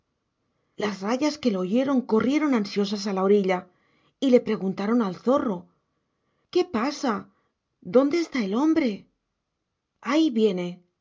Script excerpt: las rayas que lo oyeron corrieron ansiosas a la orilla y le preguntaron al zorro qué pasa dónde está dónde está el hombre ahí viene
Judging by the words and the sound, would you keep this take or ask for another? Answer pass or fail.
fail